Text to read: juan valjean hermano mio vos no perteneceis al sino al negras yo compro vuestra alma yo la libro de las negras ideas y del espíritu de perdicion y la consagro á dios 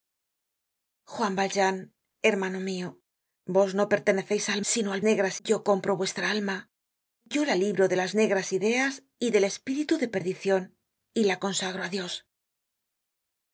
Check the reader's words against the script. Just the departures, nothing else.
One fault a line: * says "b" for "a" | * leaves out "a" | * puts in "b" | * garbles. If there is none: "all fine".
all fine